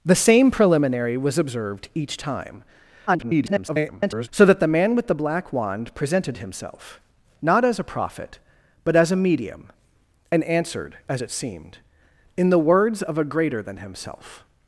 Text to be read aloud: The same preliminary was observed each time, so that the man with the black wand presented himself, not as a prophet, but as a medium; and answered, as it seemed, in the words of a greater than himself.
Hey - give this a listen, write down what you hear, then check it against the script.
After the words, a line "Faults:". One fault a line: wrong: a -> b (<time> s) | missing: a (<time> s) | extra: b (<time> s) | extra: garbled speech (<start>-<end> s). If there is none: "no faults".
The same preliminary was observed each time, [garbled] so that the man with the black wand presented himself, not as a prophet, but as a medium; and answered, as it seemed, in the words of a greater than himself.
Faults:
extra: garbled speech (3.1-4.3 s)